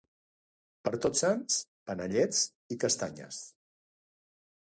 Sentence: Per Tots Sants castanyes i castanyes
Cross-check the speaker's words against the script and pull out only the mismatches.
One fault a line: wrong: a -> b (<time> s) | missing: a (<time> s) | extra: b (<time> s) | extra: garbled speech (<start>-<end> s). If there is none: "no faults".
wrong: castanyes -> panellets (1.9 s)